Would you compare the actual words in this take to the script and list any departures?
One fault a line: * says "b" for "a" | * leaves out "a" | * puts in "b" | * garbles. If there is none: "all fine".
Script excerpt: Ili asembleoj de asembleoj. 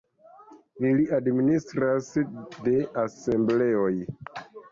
* says "administras" for "asembleoj"